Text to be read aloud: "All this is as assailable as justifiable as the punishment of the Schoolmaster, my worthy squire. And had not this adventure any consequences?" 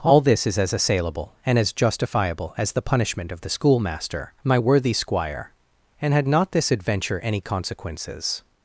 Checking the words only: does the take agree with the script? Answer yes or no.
no